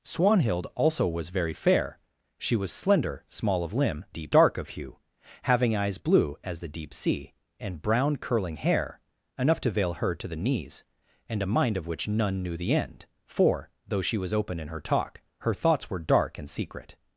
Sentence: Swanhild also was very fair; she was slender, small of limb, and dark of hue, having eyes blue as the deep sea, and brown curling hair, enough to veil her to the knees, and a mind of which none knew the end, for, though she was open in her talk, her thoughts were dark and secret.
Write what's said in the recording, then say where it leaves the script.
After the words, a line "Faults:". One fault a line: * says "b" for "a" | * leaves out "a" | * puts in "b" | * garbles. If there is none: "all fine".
Swanhild also was very fair; she was slender, small of limb, deep dark of hue, having eyes blue as the deep sea, and brown curling hair, enough to veil her to the knees, and a mind of which none knew the end, for, though she was open in her talk, her thoughts were dark and secret.
Faults:
* says "deep" for "and"